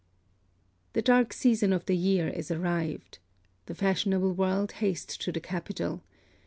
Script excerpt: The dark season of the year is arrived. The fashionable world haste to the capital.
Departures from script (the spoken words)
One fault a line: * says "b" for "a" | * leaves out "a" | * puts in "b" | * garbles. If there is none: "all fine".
all fine